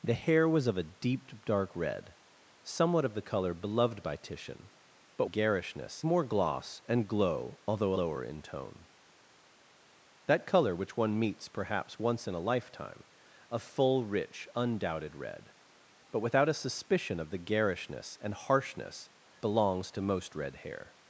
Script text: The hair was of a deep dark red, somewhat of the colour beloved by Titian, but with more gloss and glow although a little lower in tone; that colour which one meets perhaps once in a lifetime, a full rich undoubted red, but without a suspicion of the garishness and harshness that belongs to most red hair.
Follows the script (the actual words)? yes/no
no